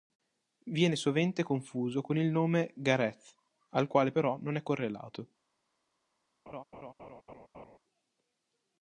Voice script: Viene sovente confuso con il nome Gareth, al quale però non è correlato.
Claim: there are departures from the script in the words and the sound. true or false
true